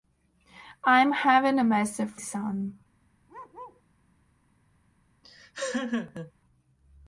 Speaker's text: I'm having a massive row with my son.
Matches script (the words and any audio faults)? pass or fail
fail